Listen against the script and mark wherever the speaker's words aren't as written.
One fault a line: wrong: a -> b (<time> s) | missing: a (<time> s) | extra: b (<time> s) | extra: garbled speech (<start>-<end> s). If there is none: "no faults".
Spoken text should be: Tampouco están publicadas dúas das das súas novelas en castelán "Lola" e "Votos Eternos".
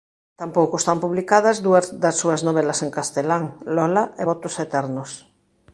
missing: das (2.2 s)